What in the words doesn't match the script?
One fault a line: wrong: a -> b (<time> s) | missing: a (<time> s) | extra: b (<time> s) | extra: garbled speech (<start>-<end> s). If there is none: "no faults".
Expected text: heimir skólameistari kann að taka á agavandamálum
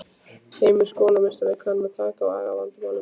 no faults